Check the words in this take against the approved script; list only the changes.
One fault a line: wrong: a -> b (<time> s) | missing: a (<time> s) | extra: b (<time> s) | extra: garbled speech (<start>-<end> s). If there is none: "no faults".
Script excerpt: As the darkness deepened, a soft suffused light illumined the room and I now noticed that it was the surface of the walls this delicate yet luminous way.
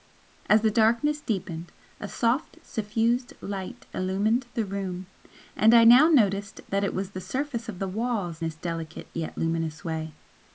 no faults